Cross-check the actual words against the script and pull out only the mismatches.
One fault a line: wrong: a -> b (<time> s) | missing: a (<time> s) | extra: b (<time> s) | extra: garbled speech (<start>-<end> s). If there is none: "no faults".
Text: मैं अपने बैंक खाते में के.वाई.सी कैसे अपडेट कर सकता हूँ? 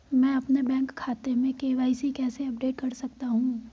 no faults